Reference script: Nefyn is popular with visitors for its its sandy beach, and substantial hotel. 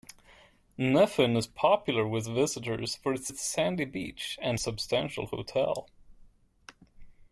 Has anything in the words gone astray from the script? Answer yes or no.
no